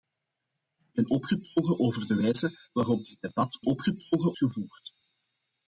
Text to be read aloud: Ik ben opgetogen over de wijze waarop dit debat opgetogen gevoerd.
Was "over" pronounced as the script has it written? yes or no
yes